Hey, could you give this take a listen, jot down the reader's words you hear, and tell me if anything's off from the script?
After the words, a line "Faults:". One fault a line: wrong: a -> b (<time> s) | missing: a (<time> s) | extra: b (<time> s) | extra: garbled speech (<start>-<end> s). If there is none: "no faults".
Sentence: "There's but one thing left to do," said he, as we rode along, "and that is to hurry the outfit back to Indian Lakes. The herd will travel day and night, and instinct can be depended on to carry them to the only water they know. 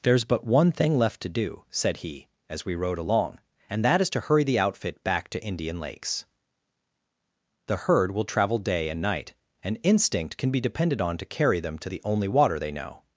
"There's but one thing left to do," said he, as we rode along, "and that is to hurry the outfit back to Indian Lakes. The herd will travel day and night, and instinct can be depended on to carry them to the only water they know.
Faults:
no faults